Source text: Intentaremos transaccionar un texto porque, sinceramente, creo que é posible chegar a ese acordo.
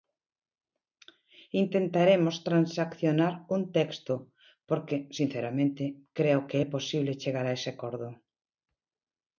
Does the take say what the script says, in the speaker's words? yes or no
yes